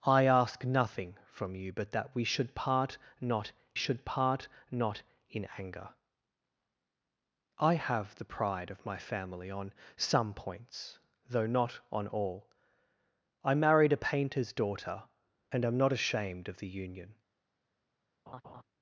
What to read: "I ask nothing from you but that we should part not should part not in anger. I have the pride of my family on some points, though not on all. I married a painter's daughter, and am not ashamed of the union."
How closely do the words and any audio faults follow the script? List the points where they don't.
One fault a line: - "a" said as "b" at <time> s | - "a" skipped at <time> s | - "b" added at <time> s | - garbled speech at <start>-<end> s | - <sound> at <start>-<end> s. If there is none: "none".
- laugh at 18.3-18.6 s